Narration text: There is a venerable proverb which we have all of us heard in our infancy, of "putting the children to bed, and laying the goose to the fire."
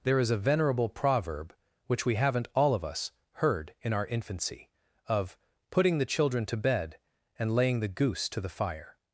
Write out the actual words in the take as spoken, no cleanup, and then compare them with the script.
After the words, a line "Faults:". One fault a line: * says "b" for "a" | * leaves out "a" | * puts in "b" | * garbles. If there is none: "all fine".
There is a venerable proverb which we haven't all of us heard in our infancy, of "putting the children to bed, and laying the goose to the fire."
Faults:
* says "haven't" for "have"